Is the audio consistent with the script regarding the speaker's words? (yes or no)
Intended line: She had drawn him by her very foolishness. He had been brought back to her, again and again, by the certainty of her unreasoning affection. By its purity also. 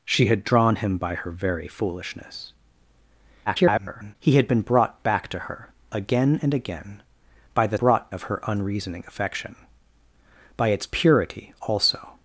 no